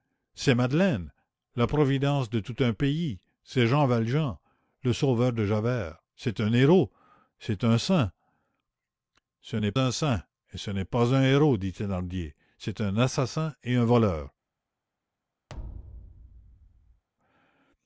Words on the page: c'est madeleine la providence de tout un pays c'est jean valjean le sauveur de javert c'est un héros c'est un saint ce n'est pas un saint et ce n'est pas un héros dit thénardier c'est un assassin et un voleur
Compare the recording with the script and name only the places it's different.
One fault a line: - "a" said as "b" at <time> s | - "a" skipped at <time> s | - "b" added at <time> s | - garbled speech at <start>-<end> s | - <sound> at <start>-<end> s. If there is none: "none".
- "pas" skipped at 9.7 s
- thud at 15.5-17.0 s